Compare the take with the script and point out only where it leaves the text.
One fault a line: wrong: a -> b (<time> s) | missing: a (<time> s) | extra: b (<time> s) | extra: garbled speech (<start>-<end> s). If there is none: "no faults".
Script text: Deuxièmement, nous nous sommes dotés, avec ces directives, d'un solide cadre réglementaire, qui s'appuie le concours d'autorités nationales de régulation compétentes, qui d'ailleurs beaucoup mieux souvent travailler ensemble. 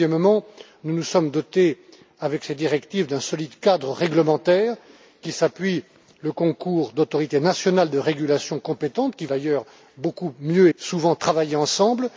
no faults